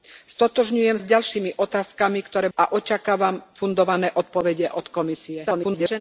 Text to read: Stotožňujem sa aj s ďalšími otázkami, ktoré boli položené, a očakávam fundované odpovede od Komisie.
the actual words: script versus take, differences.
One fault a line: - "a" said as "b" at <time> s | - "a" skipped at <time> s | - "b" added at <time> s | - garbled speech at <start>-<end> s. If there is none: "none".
- "sa" skipped at 1.0 s
- "boli položené" skipped at 2.5 s
- garbled speech at 5.4-6.0 s